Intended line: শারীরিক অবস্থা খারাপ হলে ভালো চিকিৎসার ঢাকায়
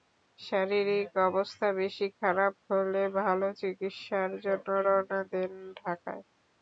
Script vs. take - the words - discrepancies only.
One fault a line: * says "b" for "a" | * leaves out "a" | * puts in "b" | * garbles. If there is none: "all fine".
* puts in "বেশি"
* puts in "জন্য রওনা দেন"